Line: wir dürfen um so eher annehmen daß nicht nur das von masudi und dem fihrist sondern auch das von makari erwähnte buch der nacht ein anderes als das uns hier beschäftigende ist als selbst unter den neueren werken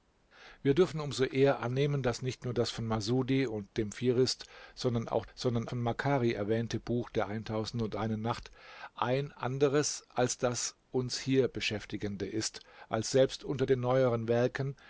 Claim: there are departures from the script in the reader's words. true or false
true